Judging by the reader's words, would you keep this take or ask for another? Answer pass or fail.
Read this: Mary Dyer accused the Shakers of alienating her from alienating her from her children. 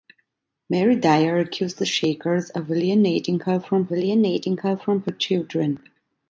pass